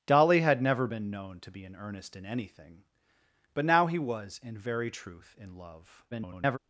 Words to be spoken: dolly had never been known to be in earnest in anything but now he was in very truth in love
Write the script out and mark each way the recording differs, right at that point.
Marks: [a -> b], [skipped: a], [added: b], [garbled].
dolly had never been known to be in earnest in anything but now he was in very truth in love [garbled]